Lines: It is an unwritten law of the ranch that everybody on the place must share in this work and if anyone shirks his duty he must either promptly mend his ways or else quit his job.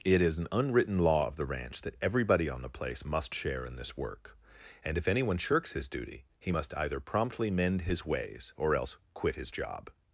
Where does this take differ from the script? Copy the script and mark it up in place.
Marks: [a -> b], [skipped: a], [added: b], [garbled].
It is an unwritten law of the ranch that everybody on the place must share in this work and if anyone shirks his duty he must either promptly mend his ways or else quit his job.